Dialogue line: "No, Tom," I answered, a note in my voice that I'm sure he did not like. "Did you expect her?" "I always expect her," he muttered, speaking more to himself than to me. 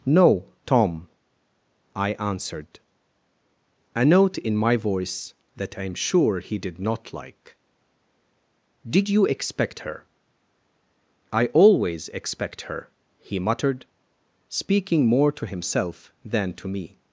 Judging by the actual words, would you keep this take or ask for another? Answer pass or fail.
pass